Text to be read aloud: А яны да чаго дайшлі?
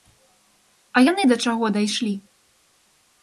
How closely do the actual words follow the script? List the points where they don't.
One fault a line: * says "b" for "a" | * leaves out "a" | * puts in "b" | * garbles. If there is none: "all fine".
all fine